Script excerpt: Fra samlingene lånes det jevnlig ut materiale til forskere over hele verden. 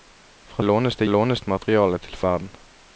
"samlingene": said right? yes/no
no